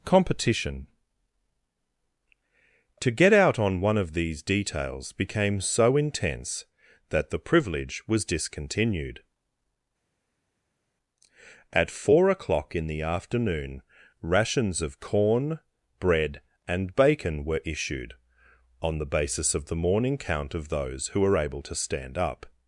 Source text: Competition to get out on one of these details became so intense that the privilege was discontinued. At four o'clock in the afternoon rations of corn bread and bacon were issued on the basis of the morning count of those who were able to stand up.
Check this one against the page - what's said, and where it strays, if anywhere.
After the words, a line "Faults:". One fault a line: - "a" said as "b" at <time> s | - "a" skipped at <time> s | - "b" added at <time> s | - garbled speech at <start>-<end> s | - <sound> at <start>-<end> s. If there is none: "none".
Competition to get out on one of these details became so intense that the privilege was discontinued. At four o'clock in the afternoon rations of corn bread and bacon were issued on the basis of the morning count of those who were able to stand up.
Faults:
none